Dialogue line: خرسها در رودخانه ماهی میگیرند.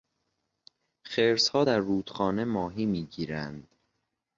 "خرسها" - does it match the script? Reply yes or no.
yes